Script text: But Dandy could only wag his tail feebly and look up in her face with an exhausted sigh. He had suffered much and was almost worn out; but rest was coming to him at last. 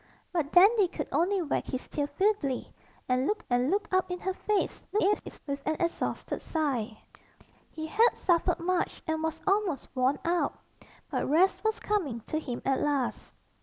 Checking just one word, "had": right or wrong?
right